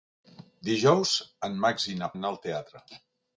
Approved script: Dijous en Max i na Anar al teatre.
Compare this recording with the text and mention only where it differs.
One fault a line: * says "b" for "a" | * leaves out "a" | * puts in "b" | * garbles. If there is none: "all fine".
all fine